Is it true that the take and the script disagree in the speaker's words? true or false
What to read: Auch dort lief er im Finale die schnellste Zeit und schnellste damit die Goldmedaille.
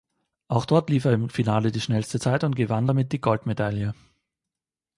true